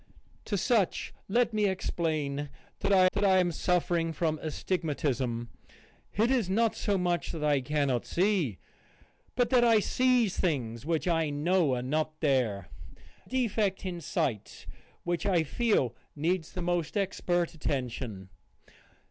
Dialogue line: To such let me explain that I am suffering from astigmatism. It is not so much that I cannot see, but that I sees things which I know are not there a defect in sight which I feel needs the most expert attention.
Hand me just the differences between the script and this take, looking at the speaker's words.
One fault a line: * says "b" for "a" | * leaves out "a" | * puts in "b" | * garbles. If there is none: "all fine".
* puts in "that I"
* leaves out "a"